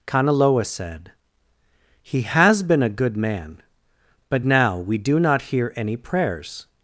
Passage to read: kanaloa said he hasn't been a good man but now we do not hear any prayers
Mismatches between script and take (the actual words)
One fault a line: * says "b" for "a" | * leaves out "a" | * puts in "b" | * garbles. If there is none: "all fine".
* says "has" for "hasn't"